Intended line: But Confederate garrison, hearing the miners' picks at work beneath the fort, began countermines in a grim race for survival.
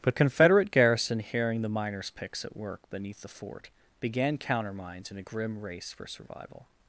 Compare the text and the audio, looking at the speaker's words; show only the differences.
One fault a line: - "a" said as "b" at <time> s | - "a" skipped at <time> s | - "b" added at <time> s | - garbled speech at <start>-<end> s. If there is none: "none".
none